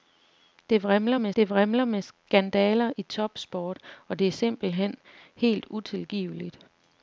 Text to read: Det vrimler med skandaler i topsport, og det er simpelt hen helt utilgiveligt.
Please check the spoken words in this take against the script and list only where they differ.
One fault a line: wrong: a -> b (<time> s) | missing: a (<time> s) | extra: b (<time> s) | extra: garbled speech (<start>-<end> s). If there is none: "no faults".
extra: det vrimler med (1.4 s)